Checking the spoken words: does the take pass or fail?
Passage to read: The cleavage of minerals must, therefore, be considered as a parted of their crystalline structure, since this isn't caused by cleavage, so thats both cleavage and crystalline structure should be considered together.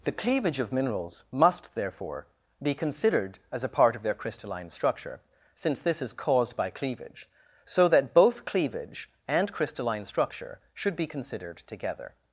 fail